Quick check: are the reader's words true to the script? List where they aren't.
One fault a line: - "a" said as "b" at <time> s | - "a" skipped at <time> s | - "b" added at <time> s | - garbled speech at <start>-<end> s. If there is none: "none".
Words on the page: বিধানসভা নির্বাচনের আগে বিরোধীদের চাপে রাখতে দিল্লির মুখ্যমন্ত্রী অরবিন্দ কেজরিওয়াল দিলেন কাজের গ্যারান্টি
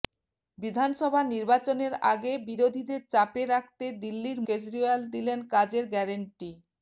- "মুখ্যমন্ত্রী অরবিন্দ" skipped at 4.4 s